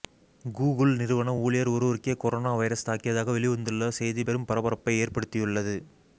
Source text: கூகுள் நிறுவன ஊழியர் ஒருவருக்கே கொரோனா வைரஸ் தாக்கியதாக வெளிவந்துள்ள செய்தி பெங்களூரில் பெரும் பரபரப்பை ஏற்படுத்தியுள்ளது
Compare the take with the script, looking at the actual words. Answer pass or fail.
fail